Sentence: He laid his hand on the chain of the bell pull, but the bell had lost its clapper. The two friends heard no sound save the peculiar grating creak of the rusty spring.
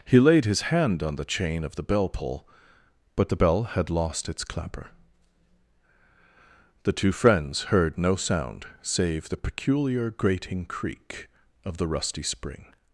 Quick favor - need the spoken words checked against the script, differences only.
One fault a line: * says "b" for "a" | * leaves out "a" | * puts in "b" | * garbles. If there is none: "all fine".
all fine